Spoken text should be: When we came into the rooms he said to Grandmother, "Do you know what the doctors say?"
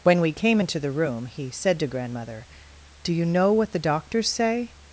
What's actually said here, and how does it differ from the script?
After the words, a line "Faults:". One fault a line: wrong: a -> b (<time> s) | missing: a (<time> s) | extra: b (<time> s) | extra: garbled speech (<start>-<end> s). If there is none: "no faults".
When we came into the room he said to Grandmother, "Do you know what the doctors say?"
Faults:
wrong: rooms -> room (0.9 s)